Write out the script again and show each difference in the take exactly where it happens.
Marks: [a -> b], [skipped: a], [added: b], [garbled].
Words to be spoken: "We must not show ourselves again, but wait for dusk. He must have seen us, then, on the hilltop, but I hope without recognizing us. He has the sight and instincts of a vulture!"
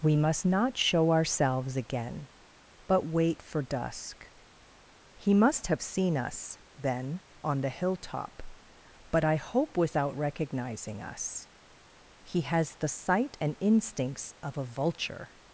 "We must not show ourselves again, but wait for dusk. He must have seen us, then, on the hilltop, but I hope without recognizing us. He has the sight and instincts of a vulture!"